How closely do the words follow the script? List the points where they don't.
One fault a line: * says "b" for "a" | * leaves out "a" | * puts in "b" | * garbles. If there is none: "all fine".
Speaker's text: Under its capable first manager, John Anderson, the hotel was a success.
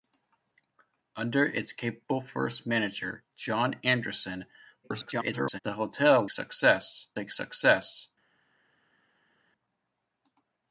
* garbles
* says "success" for "was"